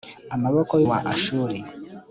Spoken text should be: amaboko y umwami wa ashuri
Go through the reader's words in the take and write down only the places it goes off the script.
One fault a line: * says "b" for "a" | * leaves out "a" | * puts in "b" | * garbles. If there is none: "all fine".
* leaves out "umwami"